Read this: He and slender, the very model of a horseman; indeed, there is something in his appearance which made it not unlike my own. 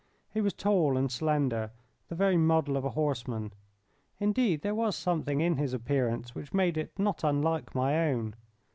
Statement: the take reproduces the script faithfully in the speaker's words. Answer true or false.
false